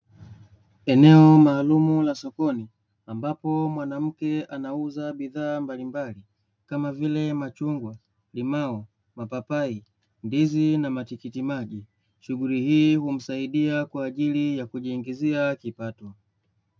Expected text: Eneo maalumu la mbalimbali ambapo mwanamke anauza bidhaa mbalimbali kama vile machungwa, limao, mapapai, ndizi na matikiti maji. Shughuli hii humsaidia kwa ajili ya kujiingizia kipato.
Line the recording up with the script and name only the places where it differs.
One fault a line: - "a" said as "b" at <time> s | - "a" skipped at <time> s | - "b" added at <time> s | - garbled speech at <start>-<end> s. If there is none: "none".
- "mbalimbali" said as "sokoni" at 2.1 s